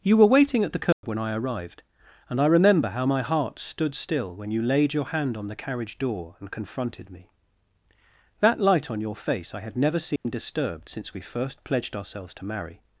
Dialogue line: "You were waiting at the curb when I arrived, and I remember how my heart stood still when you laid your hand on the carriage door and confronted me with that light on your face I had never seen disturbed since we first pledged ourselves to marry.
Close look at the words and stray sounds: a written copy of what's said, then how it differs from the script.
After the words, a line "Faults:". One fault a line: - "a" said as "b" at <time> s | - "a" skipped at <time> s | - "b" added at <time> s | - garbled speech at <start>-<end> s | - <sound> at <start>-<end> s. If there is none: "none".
"You were waiting at the curb when I arrived, and I remember how my heart stood still when you laid your hand on the carriage door and confronted me that light on your face I had never seen disturbed since we first pledged ourselves to marry.
Faults:
- dropout at 0.9-1.0 s
- "with" skipped at 7.3 s
- dropout at 10.2-10.3 s